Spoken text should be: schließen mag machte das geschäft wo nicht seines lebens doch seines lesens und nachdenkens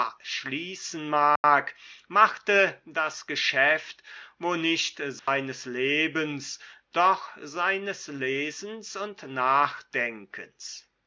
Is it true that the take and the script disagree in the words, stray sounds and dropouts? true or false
true